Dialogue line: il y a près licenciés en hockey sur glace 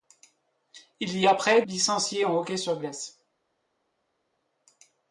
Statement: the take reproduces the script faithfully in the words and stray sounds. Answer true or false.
true